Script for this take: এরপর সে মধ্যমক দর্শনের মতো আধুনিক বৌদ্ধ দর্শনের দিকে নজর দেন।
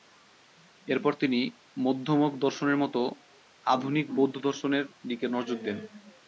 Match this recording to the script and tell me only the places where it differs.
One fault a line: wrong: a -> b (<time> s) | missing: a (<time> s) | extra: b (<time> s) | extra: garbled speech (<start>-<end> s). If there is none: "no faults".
wrong: সে -> তিনি (1.1 s)